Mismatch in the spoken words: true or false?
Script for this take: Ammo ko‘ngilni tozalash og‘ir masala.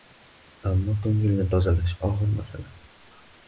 false